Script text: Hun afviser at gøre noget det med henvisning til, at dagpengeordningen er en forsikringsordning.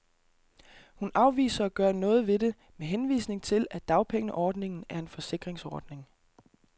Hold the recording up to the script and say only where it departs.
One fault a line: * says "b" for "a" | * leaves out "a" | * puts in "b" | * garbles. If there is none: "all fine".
* puts in "ved"